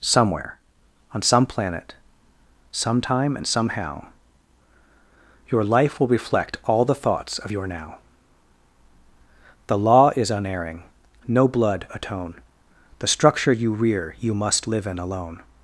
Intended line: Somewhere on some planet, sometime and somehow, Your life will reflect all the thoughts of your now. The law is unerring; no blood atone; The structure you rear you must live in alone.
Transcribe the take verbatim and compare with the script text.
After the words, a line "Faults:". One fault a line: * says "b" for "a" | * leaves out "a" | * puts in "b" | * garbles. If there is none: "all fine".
Somewhere on some planet, sometime and somehow, Your life will reflect all the thoughts of your now. The law is unerring; no blood atone; The structure you rear you must live in alone.
Faults:
all fine